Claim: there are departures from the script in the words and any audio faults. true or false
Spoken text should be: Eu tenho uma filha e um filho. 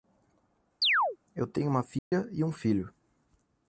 true